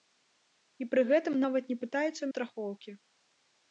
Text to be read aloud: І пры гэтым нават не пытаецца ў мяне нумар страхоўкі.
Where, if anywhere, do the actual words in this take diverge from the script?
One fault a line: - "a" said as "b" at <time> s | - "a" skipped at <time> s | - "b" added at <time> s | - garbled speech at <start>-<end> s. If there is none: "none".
- "мяне нумар" skipped at 2.3 s